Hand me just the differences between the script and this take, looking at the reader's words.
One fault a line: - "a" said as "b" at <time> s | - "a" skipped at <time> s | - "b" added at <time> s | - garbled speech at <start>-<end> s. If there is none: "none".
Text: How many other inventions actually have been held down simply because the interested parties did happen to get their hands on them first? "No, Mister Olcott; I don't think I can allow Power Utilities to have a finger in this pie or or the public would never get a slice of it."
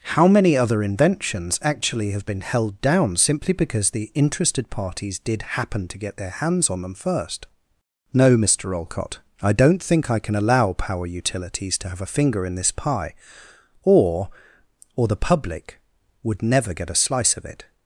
none